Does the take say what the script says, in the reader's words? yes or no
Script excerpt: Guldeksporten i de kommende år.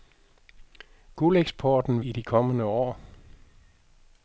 yes